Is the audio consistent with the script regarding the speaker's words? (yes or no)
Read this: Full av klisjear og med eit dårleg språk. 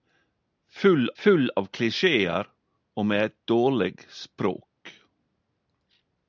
no